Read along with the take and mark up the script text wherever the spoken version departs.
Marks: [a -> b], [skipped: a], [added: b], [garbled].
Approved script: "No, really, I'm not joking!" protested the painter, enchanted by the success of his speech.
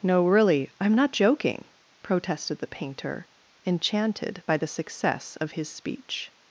"No, really, I'm not joking!" protested the painter, enchanted by the success of his speech.